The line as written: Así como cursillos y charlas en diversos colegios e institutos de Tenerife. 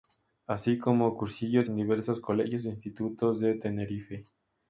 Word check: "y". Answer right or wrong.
wrong